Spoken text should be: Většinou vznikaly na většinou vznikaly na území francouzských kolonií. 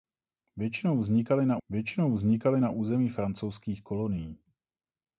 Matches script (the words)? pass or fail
pass